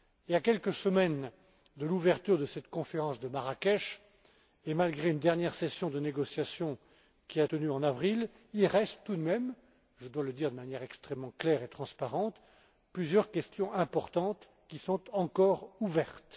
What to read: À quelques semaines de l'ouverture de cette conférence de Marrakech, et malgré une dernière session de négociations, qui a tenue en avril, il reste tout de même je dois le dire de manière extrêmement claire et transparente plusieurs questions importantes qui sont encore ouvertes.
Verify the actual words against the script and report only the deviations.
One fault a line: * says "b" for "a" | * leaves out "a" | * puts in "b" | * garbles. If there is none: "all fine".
all fine